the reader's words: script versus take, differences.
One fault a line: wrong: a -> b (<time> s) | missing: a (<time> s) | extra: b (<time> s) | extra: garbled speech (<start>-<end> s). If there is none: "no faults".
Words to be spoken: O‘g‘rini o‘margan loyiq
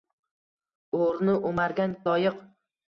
no faults